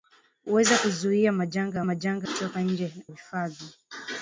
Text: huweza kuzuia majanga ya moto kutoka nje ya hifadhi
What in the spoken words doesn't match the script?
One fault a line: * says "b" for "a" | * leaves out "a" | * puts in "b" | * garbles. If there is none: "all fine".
* says "majanga" for "moto"
* leaves out "ya"